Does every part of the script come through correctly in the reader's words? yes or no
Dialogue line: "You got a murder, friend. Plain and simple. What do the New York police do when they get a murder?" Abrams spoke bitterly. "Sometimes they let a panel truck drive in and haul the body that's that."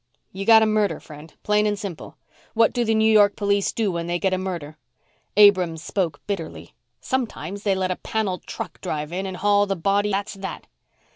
yes